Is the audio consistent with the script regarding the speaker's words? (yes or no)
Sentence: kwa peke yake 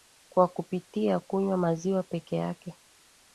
no